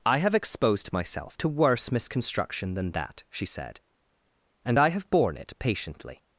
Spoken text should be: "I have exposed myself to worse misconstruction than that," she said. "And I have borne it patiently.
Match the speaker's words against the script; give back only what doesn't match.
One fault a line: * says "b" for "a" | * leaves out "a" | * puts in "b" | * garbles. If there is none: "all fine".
all fine